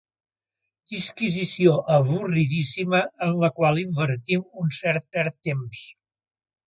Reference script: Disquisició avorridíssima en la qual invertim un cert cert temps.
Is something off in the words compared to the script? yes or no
no